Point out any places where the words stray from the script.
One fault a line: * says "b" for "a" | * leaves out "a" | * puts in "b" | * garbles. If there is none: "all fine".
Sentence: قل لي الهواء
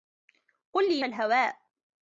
all fine